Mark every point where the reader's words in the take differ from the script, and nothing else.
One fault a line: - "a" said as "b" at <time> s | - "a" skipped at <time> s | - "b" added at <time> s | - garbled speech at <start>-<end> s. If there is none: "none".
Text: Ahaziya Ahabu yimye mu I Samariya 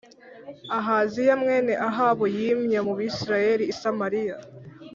- "mwene" added at 1.4 s
- "Bisirayeli" added at 3.0 s